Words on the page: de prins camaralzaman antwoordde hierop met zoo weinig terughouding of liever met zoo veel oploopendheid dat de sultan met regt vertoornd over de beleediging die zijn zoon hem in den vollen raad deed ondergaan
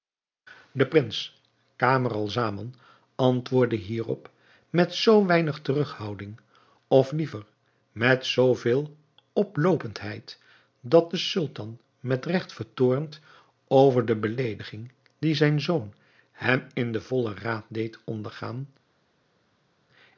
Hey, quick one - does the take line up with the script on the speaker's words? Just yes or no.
yes